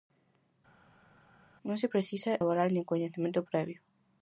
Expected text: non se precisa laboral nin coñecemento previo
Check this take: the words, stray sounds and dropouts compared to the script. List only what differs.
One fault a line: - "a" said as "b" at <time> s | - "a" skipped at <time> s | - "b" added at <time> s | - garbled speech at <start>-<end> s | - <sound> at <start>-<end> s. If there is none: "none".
none